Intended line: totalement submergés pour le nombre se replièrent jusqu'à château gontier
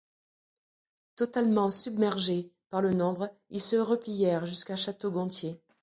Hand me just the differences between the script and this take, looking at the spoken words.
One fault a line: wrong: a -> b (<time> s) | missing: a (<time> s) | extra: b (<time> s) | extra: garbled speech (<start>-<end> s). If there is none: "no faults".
wrong: pour -> par (2.7 s)
extra: ils (3.5 s)